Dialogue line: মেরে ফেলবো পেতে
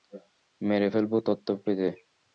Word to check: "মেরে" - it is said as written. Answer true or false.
true